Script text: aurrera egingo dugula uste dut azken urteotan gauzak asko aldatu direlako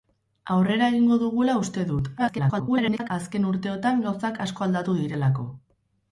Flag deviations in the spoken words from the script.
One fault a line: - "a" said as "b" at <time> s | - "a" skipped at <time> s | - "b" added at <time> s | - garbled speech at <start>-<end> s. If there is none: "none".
- garbled speech at 2.2-3.1 s